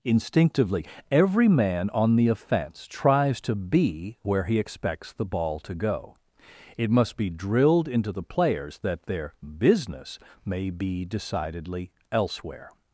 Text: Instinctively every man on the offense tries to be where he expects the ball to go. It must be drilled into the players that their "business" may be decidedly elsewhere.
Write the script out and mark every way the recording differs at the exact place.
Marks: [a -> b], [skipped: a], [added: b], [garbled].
Instinctively every man on the offense tries to be where he expects the ball to go. It must be drilled into the players that their "business" may be decidedly elsewhere.